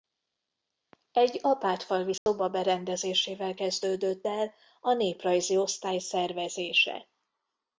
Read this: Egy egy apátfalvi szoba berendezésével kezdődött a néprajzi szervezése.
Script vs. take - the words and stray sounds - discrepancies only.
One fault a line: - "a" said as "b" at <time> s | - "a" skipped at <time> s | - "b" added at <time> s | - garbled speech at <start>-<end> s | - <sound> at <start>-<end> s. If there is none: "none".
- "egy" skipped at 1.4 s
- dropout at 2.2-2.3 s
- "el" added at 4.3 s
- "osztály" added at 5.6 s